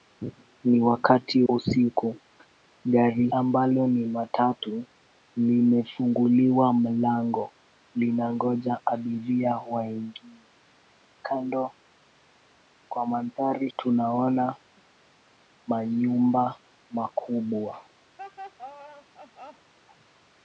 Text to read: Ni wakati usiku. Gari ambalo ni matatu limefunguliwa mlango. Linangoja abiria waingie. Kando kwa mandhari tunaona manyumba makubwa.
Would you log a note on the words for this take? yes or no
no